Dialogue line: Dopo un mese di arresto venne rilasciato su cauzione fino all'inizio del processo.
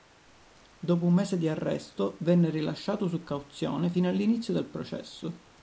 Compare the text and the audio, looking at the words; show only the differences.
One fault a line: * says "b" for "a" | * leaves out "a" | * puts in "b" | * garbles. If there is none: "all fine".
all fine